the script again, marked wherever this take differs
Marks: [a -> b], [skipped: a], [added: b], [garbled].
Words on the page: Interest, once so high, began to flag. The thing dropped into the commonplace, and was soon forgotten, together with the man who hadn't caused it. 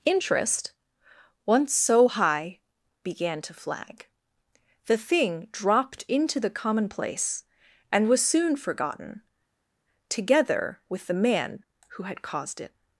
Interest, once so high, began to flag. The thing dropped into the commonplace, and was soon forgotten, together with the man who [hadn't -> had] caused it.